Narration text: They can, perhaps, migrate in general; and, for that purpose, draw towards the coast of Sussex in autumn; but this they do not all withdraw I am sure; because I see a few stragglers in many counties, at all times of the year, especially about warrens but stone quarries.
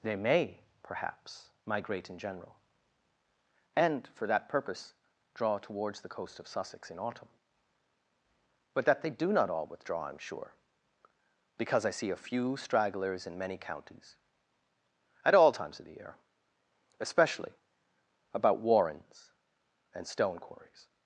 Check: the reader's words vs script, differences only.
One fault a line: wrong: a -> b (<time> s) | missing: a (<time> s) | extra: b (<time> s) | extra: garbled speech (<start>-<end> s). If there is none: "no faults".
wrong: can -> may (0.1 s)
wrong: this -> that (8.8 s)
wrong: but -> and (19.9 s)